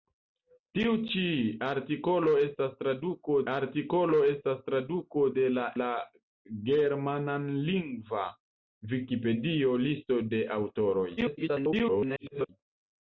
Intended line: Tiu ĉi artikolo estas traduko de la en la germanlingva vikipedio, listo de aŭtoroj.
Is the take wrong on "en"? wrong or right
wrong